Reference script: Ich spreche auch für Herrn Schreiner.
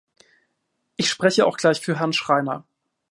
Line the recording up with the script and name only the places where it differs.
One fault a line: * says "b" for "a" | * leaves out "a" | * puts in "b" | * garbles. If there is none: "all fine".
* puts in "gleich"